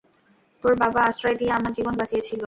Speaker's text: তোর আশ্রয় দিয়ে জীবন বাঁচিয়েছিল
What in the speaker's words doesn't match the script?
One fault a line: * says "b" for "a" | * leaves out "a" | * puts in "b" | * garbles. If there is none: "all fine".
* puts in "বাবা"
* puts in "আমার"